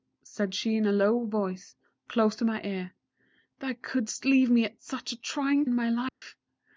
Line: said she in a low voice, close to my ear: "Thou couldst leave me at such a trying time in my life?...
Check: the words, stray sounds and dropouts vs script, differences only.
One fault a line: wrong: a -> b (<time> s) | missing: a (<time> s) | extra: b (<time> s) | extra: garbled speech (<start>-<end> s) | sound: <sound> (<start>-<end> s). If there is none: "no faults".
missing: time (5.6 s)
sound: dropout (6.1-6.2 s)